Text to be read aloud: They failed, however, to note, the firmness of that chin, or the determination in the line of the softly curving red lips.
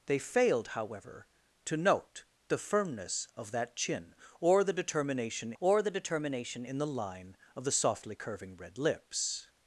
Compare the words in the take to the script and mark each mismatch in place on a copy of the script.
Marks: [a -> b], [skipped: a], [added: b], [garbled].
They failed, however, to note, the firmness of that chin, or the determination [added: or the determination] in the line of the softly curving red lips.